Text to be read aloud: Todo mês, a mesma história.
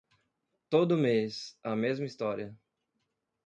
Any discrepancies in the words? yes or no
no